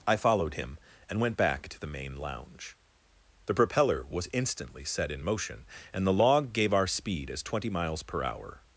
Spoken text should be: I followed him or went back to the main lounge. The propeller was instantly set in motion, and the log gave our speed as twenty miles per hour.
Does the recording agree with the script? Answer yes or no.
no